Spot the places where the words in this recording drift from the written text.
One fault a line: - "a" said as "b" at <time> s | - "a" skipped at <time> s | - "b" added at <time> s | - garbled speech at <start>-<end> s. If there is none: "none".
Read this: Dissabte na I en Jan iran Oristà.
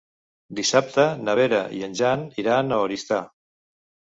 - "Vera" added at 1.4 s
- "a" added at 2.7 s